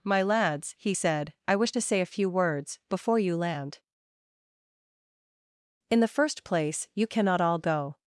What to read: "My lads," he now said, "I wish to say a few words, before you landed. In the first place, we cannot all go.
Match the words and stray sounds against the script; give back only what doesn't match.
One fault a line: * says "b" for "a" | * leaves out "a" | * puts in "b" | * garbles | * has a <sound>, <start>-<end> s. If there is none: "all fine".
* leaves out "now"
* says "land" for "landed"
* says "you" for "we"